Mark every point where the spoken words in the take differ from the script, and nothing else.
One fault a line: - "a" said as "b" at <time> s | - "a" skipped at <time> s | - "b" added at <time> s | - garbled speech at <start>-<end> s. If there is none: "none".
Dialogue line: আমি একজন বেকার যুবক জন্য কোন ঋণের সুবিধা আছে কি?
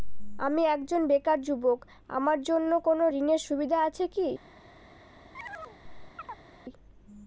- "আমার" added at 2.1 s